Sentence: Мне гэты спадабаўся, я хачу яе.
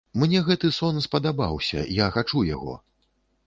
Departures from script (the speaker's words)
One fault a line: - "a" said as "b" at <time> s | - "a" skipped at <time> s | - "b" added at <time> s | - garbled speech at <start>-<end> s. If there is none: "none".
- "сон" added at 0.8 s
- "яе" said as "яго" at 2.5 s